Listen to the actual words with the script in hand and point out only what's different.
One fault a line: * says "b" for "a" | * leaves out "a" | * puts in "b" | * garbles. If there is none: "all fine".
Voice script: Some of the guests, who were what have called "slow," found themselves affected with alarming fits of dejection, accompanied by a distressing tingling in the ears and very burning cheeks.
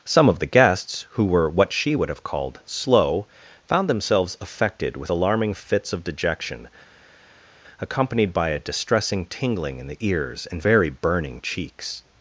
* puts in "she would"